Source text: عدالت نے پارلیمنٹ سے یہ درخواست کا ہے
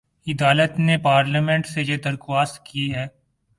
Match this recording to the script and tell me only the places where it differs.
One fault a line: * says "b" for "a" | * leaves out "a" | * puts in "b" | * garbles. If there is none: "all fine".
* says "کی" for "کا"